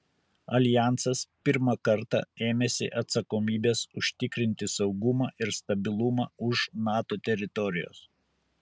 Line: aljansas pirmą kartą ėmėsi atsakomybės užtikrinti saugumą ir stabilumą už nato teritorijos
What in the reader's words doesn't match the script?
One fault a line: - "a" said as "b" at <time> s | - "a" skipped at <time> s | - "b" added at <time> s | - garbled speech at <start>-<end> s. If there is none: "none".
none